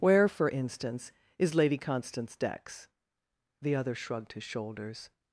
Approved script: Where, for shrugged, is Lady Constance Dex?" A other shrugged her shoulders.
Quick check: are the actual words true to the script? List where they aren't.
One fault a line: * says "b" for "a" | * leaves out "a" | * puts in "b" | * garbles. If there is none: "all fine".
* says "instance" for "shrugged"
* says "The" for "A"
* says "his" for "her"